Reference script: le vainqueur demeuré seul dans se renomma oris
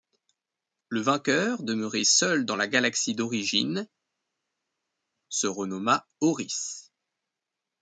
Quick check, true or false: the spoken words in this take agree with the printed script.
false